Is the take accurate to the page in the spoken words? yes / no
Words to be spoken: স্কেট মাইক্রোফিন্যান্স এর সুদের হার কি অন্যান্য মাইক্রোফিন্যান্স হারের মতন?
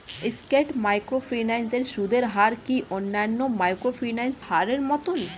yes